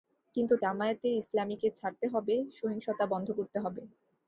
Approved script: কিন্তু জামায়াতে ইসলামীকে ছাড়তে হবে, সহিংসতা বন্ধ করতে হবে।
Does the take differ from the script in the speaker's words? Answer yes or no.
no